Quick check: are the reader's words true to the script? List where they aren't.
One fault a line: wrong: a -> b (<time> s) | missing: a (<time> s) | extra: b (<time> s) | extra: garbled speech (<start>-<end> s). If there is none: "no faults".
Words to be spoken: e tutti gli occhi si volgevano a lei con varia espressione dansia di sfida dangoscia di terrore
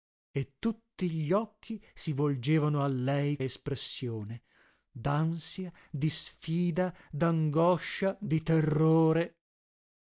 missing: con varia (3.4 s)